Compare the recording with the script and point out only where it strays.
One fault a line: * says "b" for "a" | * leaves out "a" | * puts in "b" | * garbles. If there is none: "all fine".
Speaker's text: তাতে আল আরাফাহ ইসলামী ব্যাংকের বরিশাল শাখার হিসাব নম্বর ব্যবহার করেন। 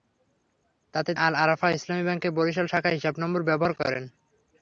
all fine